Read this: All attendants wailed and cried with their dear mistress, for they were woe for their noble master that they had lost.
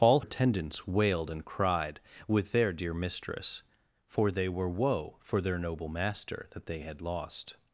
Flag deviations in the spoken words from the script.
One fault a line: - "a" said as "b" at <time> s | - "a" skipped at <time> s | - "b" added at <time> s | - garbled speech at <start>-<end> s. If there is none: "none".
none